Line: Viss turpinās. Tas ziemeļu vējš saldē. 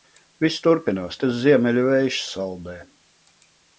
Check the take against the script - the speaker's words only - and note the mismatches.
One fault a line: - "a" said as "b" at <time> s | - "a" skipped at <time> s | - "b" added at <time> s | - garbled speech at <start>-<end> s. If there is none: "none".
none